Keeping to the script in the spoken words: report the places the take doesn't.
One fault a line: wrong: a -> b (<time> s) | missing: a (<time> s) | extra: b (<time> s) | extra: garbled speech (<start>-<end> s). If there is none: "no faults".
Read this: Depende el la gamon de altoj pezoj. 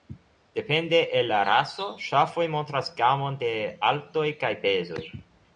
extra: raso ŝafoj montras (1.5 s)
extra: kaj (4.4 s)